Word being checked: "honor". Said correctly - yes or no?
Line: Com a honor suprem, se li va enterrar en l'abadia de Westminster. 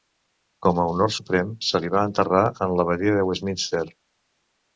yes